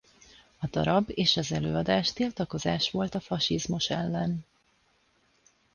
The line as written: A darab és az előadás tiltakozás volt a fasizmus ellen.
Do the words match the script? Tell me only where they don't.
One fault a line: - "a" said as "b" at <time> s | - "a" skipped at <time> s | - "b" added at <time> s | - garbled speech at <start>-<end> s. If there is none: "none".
none